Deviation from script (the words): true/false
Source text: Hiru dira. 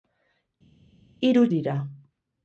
false